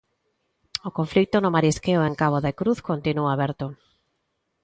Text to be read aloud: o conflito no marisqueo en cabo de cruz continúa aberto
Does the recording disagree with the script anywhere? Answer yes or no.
no